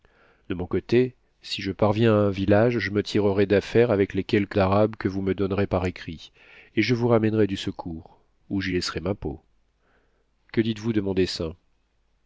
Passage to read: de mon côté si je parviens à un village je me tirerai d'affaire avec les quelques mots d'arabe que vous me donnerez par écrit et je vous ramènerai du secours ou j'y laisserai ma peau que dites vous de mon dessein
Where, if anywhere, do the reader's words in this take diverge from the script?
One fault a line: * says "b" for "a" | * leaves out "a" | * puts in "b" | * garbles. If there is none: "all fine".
* leaves out "mots"